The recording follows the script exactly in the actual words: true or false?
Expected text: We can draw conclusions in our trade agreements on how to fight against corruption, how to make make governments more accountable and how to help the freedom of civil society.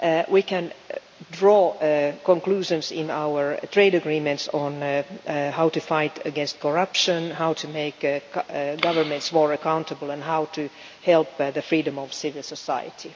false